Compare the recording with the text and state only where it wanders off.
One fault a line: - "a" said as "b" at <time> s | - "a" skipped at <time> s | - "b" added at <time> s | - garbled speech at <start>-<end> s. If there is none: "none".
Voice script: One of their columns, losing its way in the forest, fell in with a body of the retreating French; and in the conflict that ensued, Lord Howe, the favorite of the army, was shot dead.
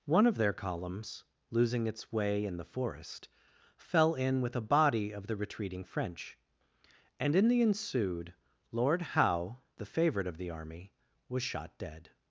- "conflict that" skipped at 7.6 s